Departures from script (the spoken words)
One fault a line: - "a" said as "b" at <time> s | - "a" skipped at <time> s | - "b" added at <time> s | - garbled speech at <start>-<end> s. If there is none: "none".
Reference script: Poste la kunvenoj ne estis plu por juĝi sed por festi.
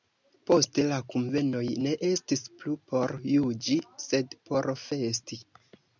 none